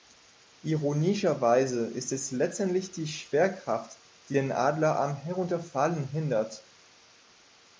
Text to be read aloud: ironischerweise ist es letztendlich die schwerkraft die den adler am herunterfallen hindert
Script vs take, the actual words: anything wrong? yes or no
no